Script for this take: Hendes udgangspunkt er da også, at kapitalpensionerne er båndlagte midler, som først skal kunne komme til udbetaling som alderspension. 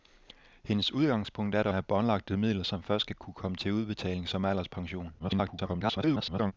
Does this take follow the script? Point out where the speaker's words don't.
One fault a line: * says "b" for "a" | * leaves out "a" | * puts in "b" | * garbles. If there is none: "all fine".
* leaves out "også at kapitalpensionerne"
* garbles